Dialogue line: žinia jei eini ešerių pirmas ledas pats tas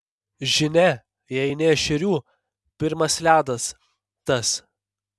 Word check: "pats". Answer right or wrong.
wrong